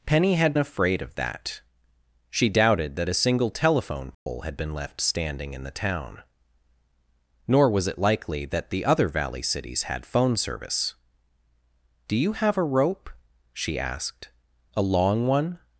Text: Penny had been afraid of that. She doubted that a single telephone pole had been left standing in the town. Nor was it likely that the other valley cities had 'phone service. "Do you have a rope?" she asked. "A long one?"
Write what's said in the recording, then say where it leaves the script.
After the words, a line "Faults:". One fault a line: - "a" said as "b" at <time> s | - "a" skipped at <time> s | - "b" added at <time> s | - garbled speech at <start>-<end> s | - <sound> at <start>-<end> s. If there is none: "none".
Penny had afraid of that. She doubted that a single telephone pole had been left standing in the town. Nor was it likely that the other valley cities had 'phone service. "Do you have a rope?" she asked. "A long one?"
Faults:
- "been" skipped at 0.5 s
- dropout at 4.1-4.3 s